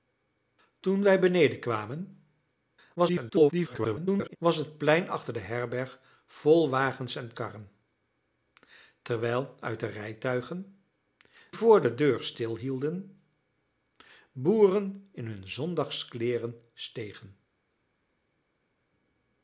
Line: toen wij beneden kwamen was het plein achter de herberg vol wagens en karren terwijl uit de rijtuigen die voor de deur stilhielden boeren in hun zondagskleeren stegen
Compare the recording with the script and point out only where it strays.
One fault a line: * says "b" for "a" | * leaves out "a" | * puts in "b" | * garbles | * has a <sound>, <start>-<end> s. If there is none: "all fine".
* garbles
* leaves out "die"